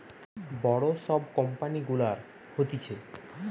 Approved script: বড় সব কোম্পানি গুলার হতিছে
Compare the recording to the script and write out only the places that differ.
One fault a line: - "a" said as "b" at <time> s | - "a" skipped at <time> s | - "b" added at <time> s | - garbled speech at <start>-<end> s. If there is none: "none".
none